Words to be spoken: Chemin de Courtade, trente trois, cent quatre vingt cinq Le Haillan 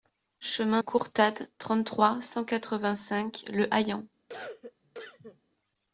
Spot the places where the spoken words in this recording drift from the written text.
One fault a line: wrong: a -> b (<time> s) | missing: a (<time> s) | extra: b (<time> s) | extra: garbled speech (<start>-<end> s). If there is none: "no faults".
missing: de (0.8 s)